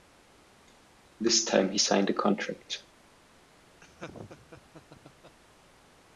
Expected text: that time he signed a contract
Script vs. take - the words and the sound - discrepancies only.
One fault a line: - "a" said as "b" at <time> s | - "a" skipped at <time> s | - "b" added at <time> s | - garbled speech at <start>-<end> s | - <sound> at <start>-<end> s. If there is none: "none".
- "that" said as "this" at 1.2 s
- laugh at 3.8-5.4 s